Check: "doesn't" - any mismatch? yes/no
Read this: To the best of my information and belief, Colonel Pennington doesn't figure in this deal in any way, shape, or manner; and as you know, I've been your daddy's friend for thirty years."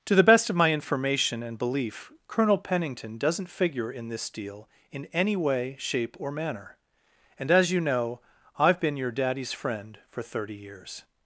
no